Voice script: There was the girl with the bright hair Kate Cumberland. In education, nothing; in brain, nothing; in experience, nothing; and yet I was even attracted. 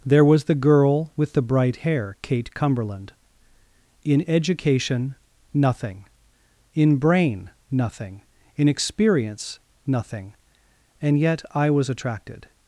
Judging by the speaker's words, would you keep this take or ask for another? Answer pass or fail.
fail